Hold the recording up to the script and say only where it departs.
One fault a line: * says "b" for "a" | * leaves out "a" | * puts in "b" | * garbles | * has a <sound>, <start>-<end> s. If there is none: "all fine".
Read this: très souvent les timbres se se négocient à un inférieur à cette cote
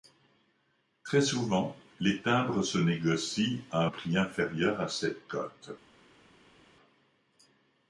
* leaves out "se"
* puts in "prix"